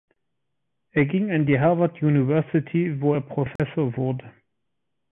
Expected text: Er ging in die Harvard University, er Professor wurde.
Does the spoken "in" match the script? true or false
false